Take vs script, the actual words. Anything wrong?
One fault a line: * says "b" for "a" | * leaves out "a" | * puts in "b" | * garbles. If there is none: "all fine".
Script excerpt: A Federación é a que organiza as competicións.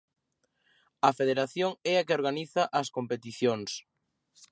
all fine